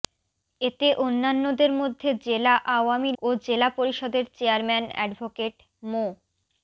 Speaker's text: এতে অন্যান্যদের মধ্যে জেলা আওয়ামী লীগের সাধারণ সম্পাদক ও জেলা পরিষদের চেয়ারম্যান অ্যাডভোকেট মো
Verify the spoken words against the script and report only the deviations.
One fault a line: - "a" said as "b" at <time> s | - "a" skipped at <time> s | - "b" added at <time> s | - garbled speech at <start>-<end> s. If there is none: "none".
- "লীগের সাধারণ সম্পাদক" skipped at 3.1 s